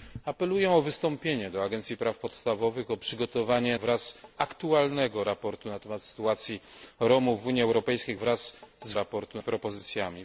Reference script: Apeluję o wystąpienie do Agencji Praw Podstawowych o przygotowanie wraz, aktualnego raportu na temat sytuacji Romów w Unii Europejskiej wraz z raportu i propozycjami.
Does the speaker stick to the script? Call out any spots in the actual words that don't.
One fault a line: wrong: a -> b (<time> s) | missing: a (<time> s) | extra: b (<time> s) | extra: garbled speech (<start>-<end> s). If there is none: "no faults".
no faults